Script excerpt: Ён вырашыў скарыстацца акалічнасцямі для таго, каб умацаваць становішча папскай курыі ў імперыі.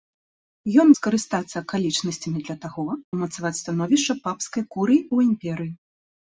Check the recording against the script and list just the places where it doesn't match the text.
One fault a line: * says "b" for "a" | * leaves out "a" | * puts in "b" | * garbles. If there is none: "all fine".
* leaves out "вырашыў"
* leaves out "каб"